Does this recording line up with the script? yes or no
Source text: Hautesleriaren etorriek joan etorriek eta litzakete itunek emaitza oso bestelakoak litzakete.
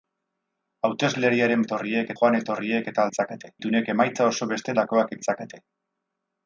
yes